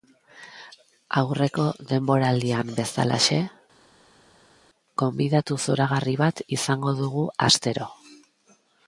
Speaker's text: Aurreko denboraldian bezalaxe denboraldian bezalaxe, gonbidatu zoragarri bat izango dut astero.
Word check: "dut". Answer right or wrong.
wrong